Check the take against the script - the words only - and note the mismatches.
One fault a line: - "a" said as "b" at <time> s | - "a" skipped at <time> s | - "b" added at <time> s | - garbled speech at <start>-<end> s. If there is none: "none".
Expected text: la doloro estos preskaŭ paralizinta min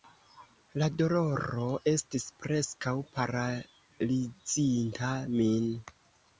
- "estos" said as "estis" at 1.9 s